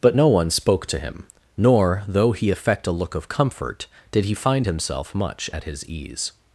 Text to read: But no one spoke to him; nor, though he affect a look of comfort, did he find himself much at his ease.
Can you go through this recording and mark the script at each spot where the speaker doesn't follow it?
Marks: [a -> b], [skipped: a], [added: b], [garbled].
But no one spoke to him; nor, though he affect a look of comfort, did he find himself much at his ease.